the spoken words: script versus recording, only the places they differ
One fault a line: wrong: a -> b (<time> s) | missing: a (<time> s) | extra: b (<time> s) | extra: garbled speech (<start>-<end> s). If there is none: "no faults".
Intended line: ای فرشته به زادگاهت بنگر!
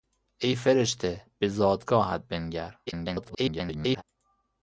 extra: garbled speech (2.9-4.0 s)